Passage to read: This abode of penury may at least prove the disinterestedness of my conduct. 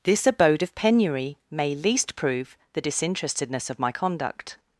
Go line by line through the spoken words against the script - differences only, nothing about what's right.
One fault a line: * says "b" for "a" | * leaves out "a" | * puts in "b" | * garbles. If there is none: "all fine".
* leaves out "at"